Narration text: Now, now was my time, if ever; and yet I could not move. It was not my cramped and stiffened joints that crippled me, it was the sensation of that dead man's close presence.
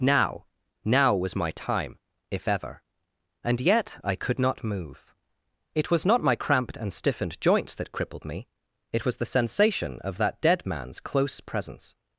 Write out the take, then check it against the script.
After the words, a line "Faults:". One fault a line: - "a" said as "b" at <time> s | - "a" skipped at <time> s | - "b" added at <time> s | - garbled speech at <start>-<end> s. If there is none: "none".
Now, now was my time, if ever; and yet I could not move. It was not my cramped and stiffened joints that crippled me, it was the sensation of that dead man's close presence.
Faults:
none